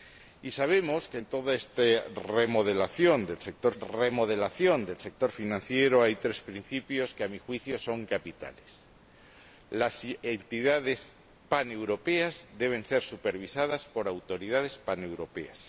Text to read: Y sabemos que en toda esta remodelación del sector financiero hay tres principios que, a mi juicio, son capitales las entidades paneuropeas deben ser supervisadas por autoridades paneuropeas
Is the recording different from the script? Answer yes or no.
yes